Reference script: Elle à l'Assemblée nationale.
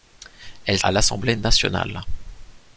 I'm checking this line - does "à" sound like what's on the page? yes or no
yes